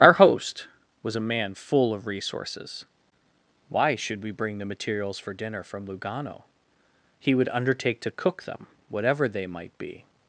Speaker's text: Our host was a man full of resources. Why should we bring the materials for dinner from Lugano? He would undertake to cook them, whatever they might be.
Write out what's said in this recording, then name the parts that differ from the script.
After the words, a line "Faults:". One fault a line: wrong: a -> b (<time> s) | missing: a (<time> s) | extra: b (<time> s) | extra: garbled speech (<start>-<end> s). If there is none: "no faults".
Our host was a man full of resources. Why should we bring the materials for dinner from Lugano? He would undertake to cook them, whatever they might be.
Faults:
no faults